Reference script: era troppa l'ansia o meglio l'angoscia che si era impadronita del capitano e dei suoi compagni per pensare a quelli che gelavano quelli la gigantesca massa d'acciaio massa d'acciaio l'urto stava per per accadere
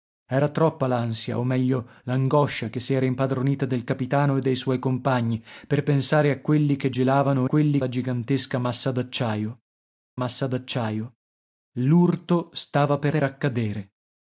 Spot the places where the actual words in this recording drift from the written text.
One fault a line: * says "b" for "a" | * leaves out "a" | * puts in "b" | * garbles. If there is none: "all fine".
all fine